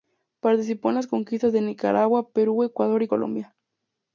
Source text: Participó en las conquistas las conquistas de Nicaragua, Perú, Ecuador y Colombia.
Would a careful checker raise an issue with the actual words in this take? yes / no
yes